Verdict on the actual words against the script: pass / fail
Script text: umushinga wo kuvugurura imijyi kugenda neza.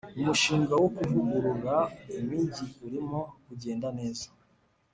fail